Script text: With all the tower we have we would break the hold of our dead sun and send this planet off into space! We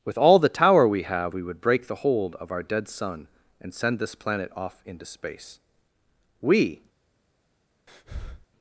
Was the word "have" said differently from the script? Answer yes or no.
no